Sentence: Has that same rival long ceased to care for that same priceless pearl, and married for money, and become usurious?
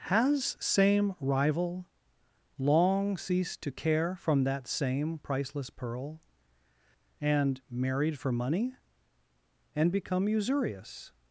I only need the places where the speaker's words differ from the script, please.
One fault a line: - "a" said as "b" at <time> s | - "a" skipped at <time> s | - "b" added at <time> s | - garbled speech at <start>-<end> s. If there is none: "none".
- "that" skipped at 0.6 s
- "for" said as "from" at 4.2 s